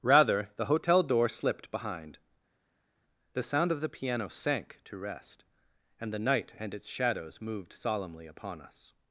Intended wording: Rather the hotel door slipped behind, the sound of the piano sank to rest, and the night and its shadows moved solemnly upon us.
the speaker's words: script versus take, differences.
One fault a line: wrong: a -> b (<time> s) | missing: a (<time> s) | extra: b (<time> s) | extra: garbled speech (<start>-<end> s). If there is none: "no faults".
no faults